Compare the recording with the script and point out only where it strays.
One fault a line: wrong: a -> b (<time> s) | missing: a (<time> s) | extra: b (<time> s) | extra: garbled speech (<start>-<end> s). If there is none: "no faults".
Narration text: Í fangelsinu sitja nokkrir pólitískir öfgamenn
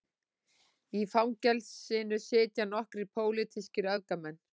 no faults